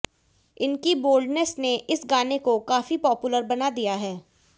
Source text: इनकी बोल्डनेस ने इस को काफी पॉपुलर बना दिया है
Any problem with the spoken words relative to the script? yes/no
yes